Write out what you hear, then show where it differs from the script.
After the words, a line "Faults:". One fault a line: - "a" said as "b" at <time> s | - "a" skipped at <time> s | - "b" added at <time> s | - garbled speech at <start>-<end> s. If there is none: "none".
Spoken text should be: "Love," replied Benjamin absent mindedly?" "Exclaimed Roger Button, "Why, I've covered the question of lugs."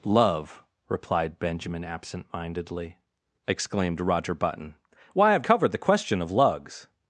"Love," replied Benjamin absent mindedly?" "Exclaimed Roger Button, "Why, I've covered the question of lugs."
Faults:
none